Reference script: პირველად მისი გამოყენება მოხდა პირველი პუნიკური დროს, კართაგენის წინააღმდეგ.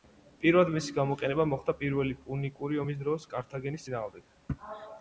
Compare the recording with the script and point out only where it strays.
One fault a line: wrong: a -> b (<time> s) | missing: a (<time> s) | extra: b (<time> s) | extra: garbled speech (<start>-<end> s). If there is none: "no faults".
extra: ომის (2.8 s)